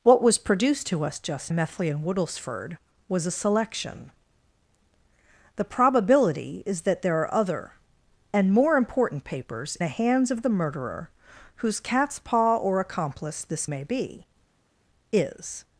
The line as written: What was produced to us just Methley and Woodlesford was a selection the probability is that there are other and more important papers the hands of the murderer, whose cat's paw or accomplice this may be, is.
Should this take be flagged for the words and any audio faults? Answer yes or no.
no